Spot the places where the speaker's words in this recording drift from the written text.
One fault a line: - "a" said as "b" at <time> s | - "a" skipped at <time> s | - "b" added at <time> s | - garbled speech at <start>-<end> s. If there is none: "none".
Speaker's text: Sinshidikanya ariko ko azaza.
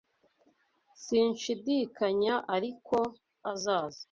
- "ko" skipped at 3.0 s